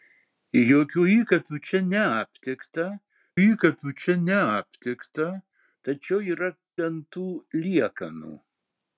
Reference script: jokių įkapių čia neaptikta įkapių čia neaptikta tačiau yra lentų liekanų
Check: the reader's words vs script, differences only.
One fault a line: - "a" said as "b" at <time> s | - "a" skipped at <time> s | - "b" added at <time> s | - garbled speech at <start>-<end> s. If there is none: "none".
none